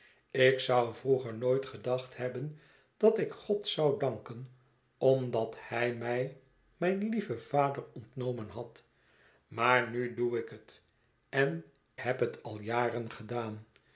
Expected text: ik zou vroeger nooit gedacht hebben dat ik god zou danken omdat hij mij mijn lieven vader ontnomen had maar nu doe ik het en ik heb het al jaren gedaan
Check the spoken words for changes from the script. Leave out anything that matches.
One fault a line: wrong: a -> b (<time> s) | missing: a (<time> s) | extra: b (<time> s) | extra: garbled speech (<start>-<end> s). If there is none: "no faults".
missing: ik (11.6 s)